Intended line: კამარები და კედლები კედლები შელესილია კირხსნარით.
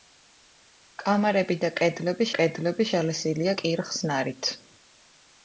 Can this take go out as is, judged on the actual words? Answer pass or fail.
pass